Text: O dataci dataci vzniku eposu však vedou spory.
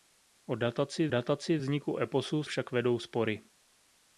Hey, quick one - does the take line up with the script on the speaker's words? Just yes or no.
yes